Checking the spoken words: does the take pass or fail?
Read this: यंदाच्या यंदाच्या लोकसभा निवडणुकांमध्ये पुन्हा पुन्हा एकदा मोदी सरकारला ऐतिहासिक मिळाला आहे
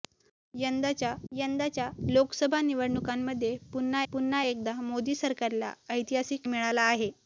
pass